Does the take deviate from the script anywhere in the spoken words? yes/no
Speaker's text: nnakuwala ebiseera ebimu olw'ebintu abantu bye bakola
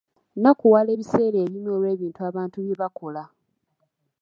no